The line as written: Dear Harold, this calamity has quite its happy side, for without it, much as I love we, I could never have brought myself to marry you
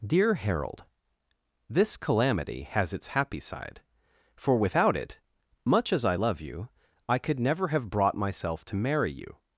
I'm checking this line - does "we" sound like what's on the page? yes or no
no